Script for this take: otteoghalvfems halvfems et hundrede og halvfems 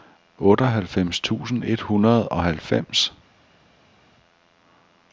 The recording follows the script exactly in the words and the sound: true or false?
false